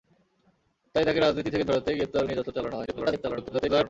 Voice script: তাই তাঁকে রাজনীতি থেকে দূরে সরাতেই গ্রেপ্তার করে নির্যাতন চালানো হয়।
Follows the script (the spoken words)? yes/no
no